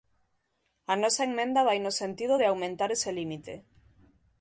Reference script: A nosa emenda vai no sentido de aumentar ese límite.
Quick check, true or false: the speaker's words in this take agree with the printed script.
true